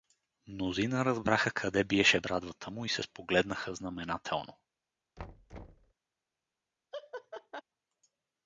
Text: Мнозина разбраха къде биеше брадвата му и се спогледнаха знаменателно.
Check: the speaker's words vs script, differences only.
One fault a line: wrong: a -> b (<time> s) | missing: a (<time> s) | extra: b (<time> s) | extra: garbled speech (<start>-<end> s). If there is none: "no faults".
no faults